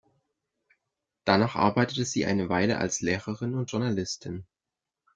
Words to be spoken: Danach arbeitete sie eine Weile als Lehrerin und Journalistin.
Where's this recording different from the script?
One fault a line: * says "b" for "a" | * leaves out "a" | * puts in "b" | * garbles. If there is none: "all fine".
all fine